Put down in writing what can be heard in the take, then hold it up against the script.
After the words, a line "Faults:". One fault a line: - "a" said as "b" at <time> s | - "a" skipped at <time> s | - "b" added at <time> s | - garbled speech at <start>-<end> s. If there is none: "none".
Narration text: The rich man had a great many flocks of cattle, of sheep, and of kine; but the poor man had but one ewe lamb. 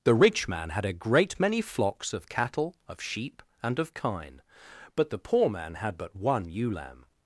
The rich man had a great many flocks of cattle, of sheep, and of kine; but the poor man had but one ewe lamb.
Faults:
none